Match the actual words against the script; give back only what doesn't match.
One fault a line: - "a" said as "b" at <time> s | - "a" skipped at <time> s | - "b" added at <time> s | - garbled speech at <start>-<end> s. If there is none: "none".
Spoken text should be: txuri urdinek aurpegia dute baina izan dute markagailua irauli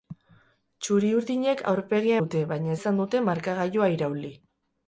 none